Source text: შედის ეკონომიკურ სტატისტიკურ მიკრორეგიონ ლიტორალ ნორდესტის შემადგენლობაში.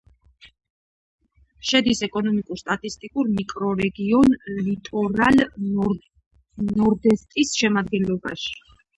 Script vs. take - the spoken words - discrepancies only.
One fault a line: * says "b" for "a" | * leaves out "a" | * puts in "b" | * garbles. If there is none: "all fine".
all fine